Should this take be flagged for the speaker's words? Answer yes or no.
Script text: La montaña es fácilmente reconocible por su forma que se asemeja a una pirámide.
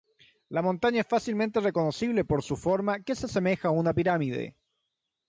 no